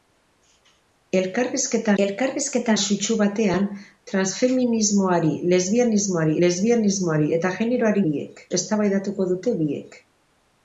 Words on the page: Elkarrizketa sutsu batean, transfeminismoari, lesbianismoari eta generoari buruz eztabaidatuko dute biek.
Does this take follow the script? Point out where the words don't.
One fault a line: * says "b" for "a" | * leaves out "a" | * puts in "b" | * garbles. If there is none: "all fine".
* puts in "elkarrizketa"
* puts in "lesbianismoari"
* says "biek" for "buruz"